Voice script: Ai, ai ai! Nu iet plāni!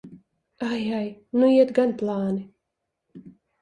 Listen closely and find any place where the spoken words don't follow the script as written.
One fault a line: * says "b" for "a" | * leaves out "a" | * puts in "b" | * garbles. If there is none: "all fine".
* leaves out "ai"
* puts in "gan"